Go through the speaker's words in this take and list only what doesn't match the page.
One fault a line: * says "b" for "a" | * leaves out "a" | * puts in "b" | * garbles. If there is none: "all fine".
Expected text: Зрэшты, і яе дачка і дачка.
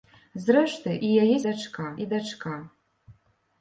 all fine